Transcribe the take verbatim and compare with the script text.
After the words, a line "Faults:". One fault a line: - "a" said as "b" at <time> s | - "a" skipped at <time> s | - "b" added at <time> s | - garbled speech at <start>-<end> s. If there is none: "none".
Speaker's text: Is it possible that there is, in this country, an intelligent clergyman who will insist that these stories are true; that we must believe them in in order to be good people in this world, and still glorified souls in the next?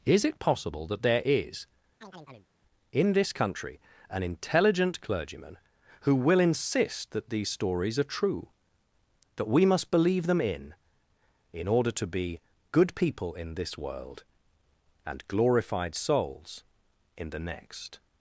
Is it possible that there is, in this country, an intelligent clergyman who will insist that these stories are true; that we must believe them in in order to be good people in this world, and glorified souls in the next?
Faults:
- "still" skipped at 15.3 s